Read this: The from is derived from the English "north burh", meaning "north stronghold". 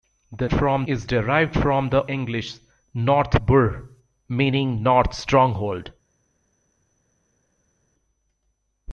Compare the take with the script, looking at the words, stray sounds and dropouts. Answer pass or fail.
pass